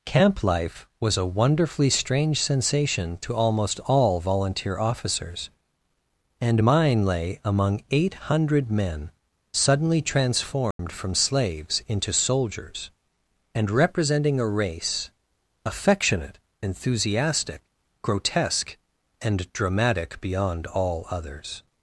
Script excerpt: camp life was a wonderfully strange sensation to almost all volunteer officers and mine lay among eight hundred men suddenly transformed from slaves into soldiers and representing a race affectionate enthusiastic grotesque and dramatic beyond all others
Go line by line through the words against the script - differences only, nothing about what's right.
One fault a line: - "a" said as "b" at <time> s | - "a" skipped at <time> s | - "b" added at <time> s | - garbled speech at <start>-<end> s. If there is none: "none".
none